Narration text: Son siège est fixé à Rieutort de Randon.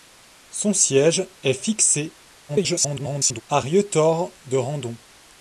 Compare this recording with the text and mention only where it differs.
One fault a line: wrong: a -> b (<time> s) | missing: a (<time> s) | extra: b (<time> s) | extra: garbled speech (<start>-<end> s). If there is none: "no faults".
extra: garbled speech (2.5-3.4 s)